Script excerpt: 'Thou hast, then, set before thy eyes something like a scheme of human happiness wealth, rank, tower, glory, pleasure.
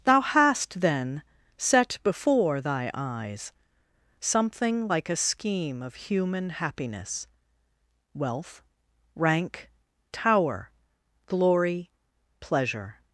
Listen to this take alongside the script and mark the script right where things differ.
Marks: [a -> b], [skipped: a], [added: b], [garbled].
'Thou hast, then, set before thy eyes something like a scheme of human happiness wealth, rank, tower, glory, pleasure.